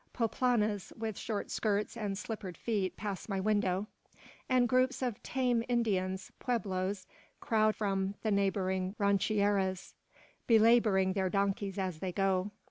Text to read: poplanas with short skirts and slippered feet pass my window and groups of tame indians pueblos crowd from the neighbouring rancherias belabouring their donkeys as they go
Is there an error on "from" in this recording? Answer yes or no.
no